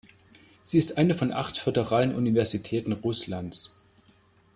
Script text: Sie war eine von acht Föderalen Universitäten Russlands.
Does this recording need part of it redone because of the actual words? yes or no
yes